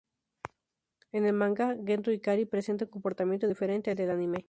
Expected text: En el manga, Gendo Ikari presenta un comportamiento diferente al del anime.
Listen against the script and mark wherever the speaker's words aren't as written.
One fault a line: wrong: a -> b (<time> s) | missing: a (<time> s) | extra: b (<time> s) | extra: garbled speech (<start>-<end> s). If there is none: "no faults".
no faults